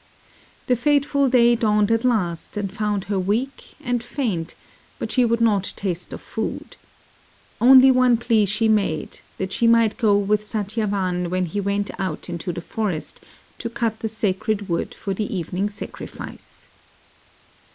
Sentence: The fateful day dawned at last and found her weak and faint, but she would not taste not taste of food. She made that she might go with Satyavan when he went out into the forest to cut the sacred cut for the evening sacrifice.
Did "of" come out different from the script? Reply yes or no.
yes